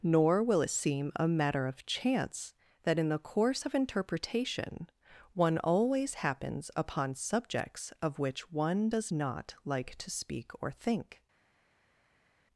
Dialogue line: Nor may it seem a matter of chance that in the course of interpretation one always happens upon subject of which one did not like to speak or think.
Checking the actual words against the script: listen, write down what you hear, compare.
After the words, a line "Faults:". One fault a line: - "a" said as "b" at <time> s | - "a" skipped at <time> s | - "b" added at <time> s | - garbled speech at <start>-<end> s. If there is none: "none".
Nor will it seem a matter of chance that in the course of interpretation one always happens upon subjects of which one does not like to speak or think.
Faults:
- "may" said as "will" at 0.4 s
- "subject" said as "subjects" at 7.2 s
- "did" said as "does" at 8.9 s